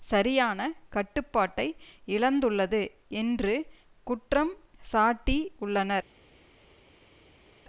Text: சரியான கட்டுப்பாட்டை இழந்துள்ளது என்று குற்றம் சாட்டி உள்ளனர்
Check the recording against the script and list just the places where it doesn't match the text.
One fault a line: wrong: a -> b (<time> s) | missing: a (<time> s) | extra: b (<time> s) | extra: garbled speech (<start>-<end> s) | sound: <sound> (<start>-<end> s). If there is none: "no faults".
no faults